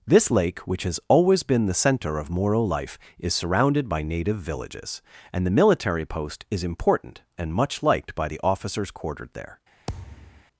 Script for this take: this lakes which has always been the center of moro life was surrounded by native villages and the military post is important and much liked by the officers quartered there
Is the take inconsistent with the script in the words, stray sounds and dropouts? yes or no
yes